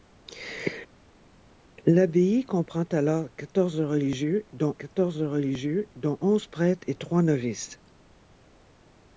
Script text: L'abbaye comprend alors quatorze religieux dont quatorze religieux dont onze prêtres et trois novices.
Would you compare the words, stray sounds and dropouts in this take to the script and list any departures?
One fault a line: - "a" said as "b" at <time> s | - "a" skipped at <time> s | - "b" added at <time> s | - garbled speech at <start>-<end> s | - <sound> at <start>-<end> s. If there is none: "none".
none